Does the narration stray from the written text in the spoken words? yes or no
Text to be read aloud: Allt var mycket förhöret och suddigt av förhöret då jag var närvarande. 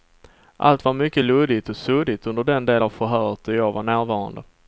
yes